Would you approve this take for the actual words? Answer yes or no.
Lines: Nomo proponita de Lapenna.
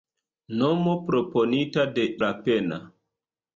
yes